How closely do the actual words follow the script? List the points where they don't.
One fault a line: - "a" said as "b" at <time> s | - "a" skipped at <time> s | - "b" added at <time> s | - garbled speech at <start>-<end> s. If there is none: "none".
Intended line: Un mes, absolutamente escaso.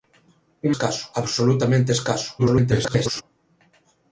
- "mes" said as "escaso" at 0.7 s
- garbled speech at 2.4-3.2 s